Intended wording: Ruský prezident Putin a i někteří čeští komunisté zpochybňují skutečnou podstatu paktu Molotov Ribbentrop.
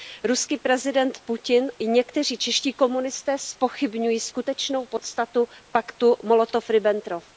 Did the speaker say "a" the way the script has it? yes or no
no